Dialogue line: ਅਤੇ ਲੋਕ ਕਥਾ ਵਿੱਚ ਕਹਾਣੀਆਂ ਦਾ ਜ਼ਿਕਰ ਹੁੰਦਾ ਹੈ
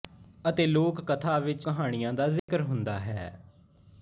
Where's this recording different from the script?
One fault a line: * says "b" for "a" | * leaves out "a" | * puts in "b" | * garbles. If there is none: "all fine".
all fine